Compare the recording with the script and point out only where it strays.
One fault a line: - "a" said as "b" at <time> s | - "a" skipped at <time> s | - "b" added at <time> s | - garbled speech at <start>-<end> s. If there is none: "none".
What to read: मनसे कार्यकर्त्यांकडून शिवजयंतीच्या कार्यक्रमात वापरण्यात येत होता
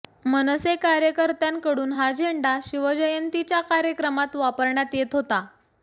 - "हा झेंडा" added at 1.9 s